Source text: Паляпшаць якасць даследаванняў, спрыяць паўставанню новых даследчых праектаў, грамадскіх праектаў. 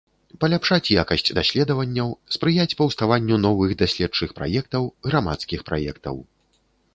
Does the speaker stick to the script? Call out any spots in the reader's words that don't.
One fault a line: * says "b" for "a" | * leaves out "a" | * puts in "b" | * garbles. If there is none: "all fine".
all fine